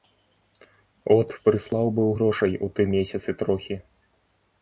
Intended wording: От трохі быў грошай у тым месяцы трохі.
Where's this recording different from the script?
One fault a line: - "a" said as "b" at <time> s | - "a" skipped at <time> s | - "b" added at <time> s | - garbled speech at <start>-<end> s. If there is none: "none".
- "трохі" said as "прыслаў" at 1.5 s